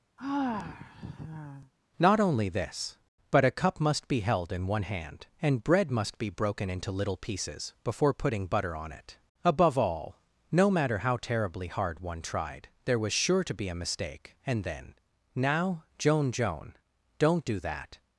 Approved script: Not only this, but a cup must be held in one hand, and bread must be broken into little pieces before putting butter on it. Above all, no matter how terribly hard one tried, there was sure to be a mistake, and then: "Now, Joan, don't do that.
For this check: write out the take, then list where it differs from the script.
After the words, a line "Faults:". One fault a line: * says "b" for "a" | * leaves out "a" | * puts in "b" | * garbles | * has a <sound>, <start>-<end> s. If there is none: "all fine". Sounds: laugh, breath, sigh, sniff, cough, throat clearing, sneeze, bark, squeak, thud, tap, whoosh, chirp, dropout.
Not only this, but a cup must be held in one hand, and bread must be broken into little pieces before putting butter on it. Above all, no matter how terribly hard one tried, there was sure to be a mistake, and then: "Now, Joan Joan, don't do that.
Faults:
* has a sigh, 0.2-1.7 s
* puts in "Joan"